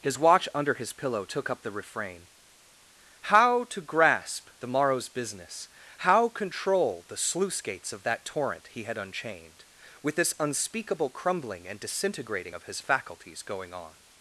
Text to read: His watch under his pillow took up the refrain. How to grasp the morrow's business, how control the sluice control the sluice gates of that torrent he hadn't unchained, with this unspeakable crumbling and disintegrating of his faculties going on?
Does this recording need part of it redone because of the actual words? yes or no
yes